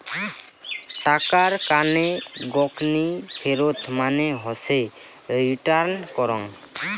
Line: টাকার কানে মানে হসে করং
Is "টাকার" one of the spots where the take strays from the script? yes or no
no